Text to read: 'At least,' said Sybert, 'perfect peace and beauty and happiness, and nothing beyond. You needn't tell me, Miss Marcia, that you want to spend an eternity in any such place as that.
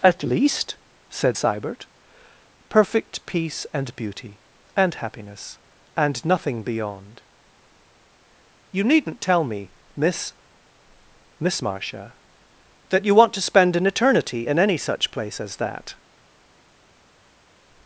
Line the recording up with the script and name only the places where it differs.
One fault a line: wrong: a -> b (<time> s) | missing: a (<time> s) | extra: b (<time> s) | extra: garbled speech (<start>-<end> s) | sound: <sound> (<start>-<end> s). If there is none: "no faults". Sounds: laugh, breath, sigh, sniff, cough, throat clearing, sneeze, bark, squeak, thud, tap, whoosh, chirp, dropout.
extra: Miss (11.4 s)